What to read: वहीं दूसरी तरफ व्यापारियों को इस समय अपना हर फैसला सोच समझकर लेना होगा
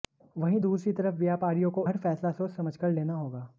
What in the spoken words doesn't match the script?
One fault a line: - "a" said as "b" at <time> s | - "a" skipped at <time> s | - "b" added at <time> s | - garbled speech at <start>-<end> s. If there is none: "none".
- "इस समय अपना" skipped at 1.9 s